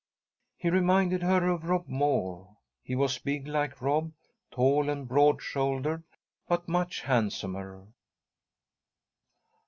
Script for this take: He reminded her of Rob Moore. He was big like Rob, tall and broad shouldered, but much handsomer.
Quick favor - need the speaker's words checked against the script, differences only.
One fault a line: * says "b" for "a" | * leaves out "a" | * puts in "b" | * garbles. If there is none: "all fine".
all fine